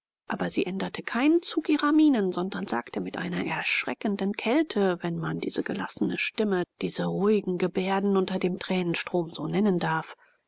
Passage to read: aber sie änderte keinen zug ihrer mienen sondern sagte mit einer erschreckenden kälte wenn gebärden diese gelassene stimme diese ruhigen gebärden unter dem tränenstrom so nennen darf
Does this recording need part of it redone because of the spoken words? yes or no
yes